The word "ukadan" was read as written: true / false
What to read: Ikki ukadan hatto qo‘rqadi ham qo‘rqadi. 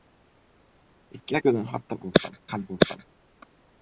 true